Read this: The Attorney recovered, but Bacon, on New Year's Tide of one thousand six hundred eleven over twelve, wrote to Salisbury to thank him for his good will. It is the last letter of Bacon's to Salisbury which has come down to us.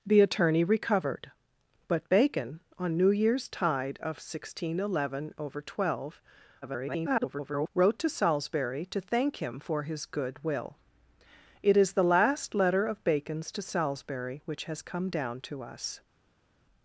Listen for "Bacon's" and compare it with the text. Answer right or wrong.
right